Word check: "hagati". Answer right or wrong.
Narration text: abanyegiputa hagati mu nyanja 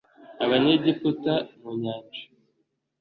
wrong